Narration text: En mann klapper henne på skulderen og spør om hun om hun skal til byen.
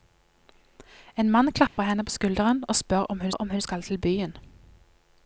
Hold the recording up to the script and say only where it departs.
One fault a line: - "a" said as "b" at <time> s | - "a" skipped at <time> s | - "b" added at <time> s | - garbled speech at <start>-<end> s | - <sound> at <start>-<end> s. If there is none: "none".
- dropout at 1.7-1.8 s